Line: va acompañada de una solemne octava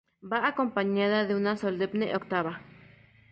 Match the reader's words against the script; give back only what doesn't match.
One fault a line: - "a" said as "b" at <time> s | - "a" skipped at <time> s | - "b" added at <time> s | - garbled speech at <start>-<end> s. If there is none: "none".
none